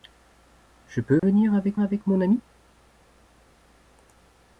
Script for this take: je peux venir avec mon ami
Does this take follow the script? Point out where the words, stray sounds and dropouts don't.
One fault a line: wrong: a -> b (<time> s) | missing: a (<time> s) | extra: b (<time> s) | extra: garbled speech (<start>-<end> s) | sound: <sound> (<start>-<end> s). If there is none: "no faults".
sound: dropout (1.2-1.2 s)
extra: avec (1.8 s)